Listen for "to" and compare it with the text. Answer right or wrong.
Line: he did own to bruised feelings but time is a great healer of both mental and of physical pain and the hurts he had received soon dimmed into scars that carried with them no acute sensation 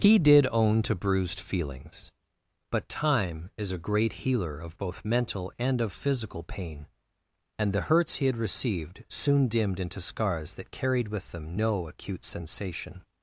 right